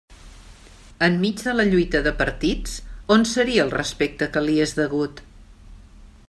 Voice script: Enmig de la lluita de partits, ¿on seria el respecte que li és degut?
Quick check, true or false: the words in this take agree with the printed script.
true